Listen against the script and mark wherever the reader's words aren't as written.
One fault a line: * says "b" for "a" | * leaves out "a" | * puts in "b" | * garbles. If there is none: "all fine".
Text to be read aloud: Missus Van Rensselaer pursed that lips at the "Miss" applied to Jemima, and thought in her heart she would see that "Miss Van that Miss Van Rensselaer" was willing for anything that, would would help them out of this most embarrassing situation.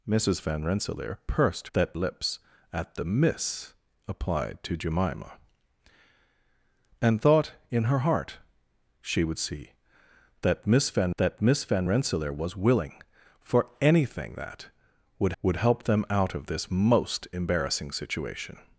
all fine